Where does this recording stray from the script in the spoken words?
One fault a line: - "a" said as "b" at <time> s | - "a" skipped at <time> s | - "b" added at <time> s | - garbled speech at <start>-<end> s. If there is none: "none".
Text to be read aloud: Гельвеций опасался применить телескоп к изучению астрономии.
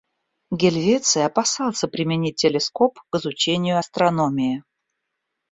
none